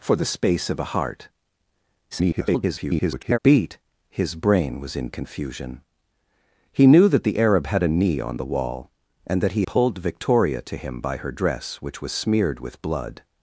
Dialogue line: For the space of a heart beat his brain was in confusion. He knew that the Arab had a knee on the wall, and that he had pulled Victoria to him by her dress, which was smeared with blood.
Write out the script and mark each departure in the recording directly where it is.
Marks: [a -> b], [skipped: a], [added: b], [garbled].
For the space of a heart [garbled] beat his brain was in confusion. He knew that the Arab had a knee on the wall, and that he [skipped: had] pulled Victoria to him by her dress, which was smeared with blood.